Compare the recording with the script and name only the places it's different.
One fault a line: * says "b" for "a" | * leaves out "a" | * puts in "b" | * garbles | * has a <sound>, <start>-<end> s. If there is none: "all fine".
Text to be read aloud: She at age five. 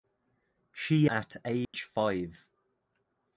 * has a dropout, 1.6-1.7 s